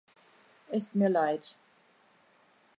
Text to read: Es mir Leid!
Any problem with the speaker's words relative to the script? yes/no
no